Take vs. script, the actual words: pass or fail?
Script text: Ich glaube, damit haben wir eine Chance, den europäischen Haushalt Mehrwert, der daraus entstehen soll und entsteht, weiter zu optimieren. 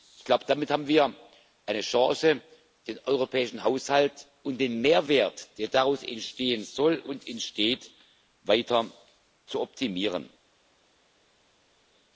fail